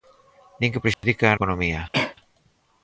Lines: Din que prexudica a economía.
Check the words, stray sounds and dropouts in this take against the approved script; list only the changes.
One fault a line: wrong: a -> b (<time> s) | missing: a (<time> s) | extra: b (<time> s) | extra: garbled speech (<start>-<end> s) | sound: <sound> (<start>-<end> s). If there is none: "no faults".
sound: dropout (0.9-1.0 s)
sound: cough (1.9-2.2 s)